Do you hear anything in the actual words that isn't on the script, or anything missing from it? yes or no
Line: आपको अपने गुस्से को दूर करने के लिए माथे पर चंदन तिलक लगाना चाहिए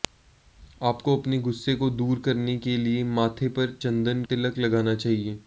no